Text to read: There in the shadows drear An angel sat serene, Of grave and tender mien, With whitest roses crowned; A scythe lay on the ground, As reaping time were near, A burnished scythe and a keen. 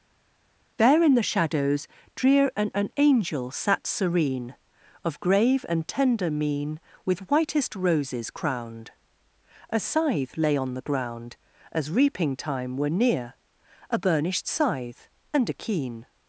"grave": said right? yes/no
yes